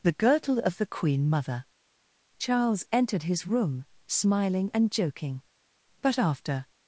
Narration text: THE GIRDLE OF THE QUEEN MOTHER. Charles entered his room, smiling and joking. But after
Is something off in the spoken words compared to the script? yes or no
no